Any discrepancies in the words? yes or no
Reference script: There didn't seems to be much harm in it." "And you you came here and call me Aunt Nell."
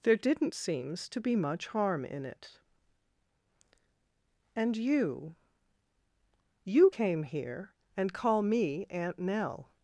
no